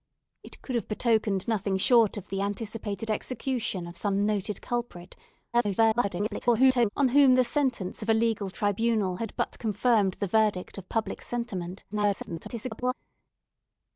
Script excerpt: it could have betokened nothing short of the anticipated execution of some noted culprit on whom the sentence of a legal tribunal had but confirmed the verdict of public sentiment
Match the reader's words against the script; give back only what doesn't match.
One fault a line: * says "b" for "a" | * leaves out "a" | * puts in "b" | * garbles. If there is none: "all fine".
* garbles
* garbles